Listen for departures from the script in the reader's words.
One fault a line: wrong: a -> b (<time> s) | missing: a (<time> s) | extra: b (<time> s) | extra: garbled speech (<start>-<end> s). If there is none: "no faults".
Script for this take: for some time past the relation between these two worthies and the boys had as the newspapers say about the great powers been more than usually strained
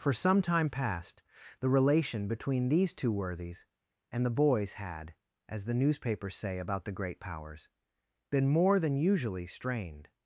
no faults